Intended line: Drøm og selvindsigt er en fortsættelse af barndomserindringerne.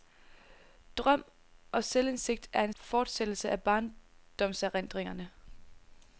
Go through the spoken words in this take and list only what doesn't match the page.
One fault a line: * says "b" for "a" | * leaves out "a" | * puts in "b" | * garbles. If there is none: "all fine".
all fine